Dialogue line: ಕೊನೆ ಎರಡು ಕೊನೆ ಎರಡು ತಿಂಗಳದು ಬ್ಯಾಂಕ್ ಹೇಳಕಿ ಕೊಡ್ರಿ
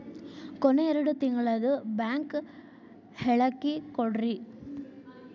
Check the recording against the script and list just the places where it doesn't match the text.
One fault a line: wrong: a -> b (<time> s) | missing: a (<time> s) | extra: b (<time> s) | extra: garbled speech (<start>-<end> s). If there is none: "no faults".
missing: ಕೊನೆ ಎರಡು (1.1 s)